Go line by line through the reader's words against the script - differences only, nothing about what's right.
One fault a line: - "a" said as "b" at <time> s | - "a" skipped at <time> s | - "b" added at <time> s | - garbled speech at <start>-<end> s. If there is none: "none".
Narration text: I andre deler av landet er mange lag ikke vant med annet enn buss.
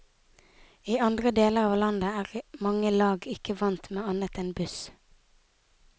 none